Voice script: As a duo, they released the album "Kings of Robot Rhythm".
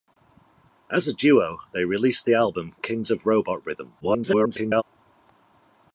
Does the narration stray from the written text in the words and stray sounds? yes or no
yes